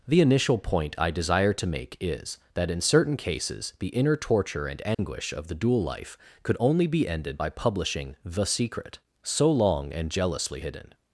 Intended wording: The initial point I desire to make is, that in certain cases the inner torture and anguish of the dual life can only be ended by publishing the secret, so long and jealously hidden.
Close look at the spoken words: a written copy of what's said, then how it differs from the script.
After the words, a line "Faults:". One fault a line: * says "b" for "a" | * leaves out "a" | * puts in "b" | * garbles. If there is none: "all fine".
The initial point I desire to make is, that in certain cases the inner torture and anguish of the dual life could only be ended by publishing the secret, so long and jealously hidden.
Faults:
* says "could" for "can"